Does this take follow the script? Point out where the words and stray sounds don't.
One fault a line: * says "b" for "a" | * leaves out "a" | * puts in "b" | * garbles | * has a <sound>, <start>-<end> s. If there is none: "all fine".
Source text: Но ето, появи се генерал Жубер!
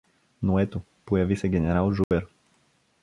* has a dropout, 2.0-2.1 s